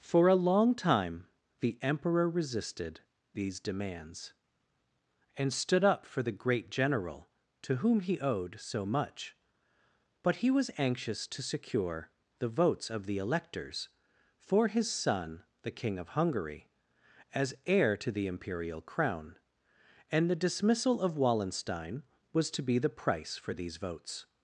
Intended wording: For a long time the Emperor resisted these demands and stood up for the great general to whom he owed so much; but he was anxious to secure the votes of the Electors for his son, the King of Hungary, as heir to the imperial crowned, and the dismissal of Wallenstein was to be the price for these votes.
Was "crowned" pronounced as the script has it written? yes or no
no